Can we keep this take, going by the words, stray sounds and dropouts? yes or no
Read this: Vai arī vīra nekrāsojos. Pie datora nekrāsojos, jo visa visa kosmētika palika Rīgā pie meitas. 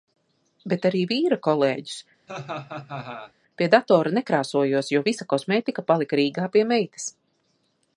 no